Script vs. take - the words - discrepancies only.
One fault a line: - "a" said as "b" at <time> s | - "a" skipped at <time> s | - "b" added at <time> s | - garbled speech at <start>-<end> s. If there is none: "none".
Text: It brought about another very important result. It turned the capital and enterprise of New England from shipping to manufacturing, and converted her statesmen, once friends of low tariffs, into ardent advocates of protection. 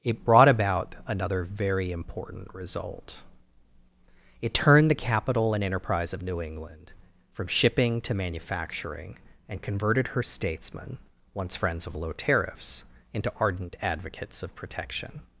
none